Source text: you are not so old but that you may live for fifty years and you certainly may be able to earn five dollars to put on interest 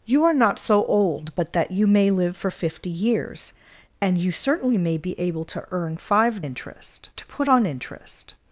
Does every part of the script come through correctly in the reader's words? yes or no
no